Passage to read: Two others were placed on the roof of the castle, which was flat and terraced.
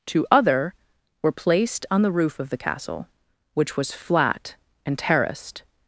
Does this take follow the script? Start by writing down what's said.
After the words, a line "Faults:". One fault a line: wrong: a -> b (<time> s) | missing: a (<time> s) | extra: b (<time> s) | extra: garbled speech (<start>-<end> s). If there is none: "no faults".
Two other were placed on the roof of the castle, which was flat and terraced.
Faults:
wrong: others -> other (0.3 s)